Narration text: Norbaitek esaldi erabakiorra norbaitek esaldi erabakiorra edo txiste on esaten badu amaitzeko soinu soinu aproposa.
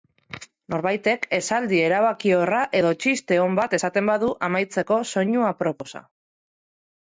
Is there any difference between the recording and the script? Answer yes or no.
yes